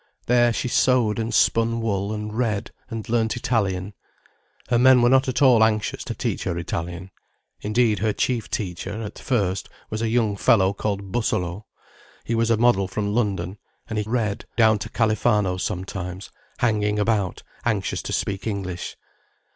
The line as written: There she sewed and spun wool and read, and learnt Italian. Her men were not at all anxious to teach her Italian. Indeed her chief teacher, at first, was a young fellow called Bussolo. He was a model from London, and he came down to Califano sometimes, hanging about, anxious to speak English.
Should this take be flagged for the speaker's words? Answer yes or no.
yes